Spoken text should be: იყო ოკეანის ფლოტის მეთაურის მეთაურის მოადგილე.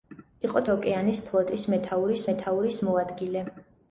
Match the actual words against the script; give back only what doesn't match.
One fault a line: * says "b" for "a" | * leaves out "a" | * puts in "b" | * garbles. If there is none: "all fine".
all fine